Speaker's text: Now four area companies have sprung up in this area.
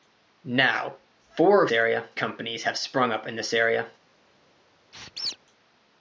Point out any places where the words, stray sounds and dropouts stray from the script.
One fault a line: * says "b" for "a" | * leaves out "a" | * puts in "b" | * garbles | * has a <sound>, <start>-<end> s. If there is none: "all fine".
* has a squeak, 4.9-5.4 s